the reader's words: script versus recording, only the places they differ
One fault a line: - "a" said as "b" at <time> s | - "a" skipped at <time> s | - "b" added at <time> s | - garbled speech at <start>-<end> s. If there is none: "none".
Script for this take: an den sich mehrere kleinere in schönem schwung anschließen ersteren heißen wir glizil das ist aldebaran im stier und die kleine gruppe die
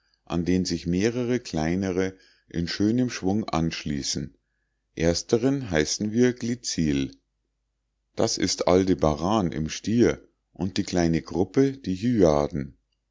none